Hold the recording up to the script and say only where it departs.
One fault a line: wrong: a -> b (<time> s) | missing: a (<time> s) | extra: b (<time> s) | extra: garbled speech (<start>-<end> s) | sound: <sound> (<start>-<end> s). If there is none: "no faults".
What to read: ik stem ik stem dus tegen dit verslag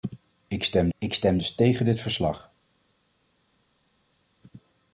no faults